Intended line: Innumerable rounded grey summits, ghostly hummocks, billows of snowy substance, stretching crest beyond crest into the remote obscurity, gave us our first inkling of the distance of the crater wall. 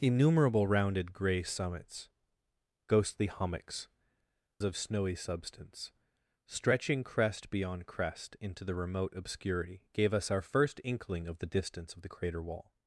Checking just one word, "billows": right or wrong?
wrong